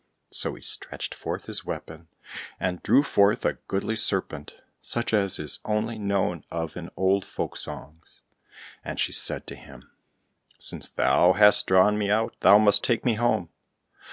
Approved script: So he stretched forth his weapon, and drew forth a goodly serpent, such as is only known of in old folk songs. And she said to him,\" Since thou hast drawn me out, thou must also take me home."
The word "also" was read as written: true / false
false